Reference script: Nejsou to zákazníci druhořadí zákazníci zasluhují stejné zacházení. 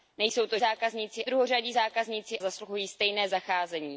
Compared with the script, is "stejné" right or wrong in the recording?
right